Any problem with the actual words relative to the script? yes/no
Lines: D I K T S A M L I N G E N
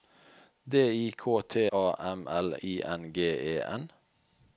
yes